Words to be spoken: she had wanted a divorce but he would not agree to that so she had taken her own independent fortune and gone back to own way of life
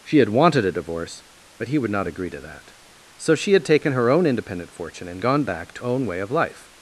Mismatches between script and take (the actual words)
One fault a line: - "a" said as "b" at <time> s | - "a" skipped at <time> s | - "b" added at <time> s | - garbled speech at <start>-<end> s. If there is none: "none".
none